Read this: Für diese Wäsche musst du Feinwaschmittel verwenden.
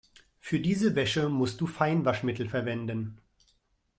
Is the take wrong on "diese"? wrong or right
right